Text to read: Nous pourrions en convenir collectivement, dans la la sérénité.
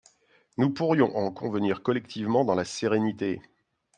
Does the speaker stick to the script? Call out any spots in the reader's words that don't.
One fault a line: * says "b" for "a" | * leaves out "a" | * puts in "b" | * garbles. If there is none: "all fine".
* leaves out "la"